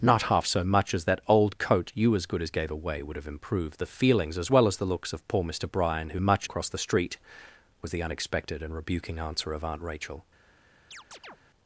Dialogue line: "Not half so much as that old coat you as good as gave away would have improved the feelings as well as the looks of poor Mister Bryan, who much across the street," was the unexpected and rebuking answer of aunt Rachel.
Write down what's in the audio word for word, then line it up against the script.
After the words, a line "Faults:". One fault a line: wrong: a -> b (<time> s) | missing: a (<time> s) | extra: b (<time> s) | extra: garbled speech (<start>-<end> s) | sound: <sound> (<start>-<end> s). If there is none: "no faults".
"Not half so much as that old coat you as good as gave away would have improved the feelings as well as the looks of poor Mister Bryan, who much across the street," was the unexpected and rebuking answer of aunt Rachel.
Faults:
sound: chirp (10.9-11.4 s)